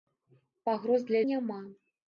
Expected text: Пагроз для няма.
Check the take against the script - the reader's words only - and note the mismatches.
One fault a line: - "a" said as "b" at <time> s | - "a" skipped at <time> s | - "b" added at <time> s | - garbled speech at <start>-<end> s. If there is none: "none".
none